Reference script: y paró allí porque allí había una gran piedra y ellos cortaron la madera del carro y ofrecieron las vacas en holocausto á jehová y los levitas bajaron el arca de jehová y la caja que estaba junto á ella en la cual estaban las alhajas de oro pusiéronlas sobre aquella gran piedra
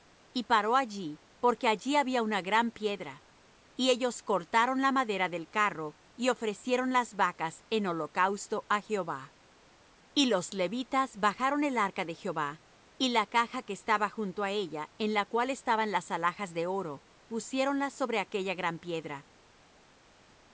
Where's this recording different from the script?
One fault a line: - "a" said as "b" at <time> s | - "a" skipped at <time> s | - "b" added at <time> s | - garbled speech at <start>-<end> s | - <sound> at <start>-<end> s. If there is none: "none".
none